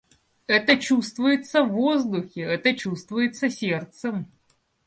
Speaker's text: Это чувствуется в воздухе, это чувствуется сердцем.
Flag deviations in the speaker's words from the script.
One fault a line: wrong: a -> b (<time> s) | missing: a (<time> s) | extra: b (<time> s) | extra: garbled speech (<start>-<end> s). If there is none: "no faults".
no faults